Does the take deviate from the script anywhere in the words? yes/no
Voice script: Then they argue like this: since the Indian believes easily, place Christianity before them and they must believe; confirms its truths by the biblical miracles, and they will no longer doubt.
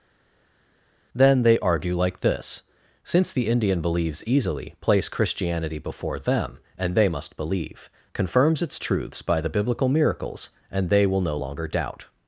no